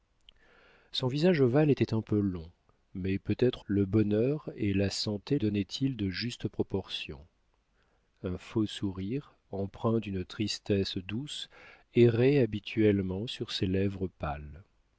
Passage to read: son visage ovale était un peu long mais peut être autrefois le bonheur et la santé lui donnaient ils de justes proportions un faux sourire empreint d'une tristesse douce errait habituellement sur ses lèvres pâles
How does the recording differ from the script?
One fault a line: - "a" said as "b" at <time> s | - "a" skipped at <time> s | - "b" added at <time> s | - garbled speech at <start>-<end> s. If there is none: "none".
- "autrefois" skipped at 3.6 s
- "lui" skipped at 5.4 s